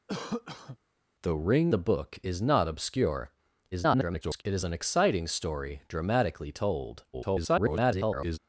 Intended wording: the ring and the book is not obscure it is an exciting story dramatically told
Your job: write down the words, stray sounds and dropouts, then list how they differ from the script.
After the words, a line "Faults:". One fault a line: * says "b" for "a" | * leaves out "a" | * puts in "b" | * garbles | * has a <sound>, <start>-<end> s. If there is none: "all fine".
the ring the book is not obscure [garbled] it is an exciting story dramatically told [garbled]
Faults:
* has a cough, 0.1-0.8 s
* leaves out "and"
* garbles
* garbles